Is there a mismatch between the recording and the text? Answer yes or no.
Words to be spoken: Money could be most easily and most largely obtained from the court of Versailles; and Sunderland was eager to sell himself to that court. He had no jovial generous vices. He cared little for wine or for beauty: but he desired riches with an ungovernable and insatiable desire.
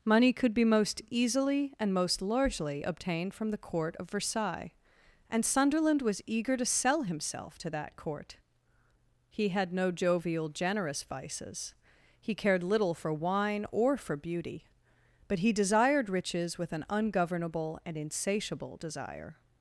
no